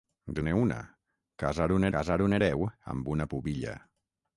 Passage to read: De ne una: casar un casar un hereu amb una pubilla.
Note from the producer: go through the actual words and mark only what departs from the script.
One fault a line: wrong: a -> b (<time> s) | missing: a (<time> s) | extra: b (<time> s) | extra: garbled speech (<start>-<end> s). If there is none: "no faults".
no faults